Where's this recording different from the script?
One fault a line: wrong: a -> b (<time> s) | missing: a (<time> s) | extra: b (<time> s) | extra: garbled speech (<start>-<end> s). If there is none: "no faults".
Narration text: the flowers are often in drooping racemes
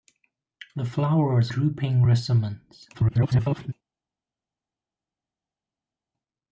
missing: are often in (1.5 s)
extra: garbled speech (2.9-3.7 s)